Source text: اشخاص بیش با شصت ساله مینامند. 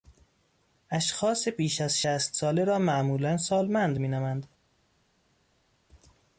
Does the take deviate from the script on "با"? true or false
true